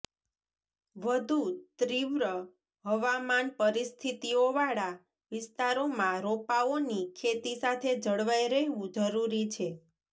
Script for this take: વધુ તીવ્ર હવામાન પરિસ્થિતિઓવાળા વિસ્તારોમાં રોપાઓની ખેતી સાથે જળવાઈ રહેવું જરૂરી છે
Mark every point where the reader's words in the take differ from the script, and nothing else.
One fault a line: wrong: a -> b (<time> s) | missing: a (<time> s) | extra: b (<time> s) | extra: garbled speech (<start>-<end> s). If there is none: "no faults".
no faults